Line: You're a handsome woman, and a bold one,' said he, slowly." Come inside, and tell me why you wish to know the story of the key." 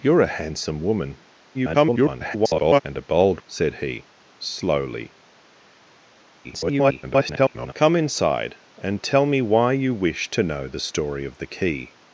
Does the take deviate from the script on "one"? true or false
true